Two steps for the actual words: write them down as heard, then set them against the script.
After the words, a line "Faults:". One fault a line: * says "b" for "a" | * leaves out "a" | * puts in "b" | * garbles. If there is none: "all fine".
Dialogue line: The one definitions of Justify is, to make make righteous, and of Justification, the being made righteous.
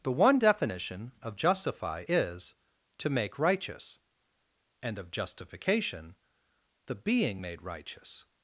The one definition of Justify is, to make righteous, and of Justification, the being made righteous.
Faults:
* says "definition" for "definitions"
* leaves out "make"